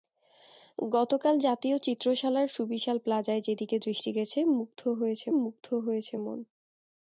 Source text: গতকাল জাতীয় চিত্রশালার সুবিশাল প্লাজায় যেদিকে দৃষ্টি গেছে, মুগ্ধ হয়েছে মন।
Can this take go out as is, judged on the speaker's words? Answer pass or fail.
fail